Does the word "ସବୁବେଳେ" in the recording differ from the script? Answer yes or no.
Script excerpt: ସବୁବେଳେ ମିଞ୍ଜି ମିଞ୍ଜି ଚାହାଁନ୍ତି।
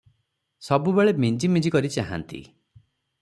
no